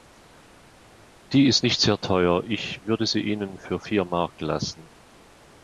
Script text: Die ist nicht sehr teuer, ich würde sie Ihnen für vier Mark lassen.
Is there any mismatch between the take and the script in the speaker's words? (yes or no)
no